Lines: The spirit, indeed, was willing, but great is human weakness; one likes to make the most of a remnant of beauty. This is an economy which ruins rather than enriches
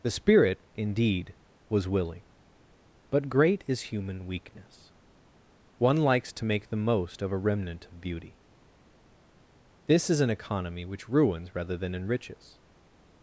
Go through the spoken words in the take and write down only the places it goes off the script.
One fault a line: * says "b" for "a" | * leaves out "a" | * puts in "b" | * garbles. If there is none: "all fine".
all fine